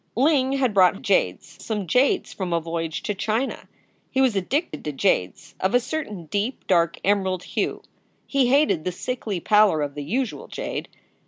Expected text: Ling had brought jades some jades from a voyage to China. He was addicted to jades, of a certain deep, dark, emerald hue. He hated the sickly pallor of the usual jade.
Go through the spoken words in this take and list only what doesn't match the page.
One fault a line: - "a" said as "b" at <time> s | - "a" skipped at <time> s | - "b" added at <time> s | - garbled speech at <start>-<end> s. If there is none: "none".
none